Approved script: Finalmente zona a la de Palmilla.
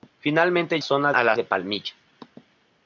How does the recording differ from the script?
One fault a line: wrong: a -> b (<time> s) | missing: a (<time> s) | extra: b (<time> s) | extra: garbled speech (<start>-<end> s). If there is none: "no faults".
no faults